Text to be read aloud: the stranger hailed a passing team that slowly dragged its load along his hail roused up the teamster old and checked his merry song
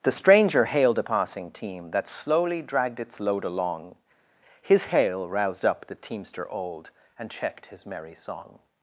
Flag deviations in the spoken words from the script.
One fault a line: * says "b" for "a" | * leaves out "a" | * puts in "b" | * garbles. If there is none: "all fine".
all fine